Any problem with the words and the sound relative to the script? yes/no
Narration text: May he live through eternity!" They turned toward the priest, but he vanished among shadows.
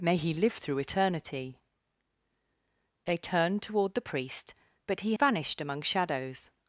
no